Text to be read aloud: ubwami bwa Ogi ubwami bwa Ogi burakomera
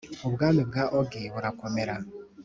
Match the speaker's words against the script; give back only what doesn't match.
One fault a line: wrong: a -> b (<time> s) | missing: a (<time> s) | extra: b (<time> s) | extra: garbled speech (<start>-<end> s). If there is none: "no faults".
missing: ubwami bwa Ogi (1.2 s)